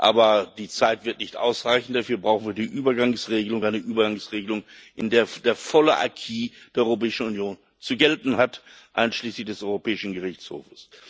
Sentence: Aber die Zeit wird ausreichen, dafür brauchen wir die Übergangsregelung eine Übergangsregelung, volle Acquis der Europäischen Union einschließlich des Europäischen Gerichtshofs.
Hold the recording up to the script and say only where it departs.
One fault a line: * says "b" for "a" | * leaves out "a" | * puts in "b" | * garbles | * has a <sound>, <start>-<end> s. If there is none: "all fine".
* puts in "nicht"
* puts in "in der der"
* puts in "zu gelten hat"